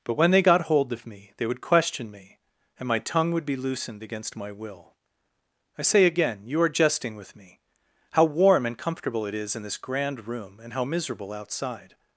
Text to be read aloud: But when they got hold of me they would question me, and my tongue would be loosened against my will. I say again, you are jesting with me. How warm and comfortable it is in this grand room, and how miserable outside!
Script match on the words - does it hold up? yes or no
yes